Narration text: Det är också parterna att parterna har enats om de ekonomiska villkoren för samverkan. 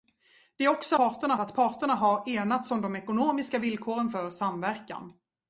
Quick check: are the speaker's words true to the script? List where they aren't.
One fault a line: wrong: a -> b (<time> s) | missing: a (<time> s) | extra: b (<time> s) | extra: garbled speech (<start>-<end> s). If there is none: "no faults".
no faults